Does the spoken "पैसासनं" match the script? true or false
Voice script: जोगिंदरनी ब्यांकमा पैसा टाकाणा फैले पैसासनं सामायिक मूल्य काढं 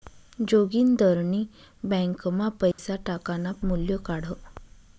false